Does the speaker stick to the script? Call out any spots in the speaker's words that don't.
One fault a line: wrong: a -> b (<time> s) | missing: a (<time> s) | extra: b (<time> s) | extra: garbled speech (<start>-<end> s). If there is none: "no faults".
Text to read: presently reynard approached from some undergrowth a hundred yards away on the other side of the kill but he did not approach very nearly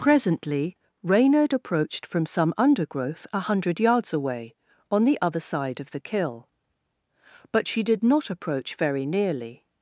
wrong: he -> she (7.7 s)